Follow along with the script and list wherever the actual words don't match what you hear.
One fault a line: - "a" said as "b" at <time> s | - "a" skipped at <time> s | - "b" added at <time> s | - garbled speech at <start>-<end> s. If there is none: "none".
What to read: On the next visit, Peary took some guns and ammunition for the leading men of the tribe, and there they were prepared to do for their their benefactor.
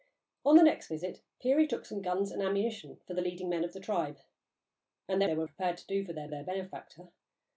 none